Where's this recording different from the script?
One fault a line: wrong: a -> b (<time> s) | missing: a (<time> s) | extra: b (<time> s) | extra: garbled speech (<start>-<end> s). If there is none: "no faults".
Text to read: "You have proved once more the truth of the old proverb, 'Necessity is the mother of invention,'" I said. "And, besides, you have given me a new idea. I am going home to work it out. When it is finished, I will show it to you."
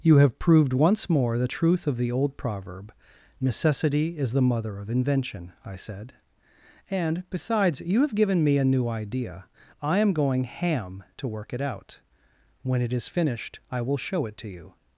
wrong: home -> ham (10.4 s)